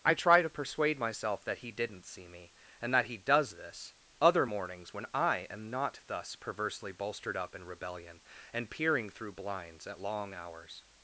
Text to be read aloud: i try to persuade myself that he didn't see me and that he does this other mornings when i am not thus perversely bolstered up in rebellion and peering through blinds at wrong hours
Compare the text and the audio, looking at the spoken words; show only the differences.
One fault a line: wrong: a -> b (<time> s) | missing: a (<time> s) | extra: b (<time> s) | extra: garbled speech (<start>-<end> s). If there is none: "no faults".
wrong: wrong -> long (10.0 s)